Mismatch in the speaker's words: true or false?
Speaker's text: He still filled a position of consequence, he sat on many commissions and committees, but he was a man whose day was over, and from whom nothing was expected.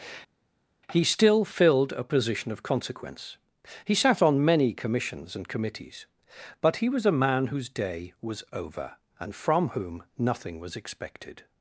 false